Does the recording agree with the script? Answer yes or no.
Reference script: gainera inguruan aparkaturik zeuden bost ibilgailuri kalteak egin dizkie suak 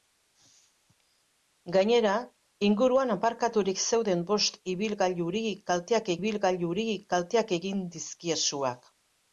no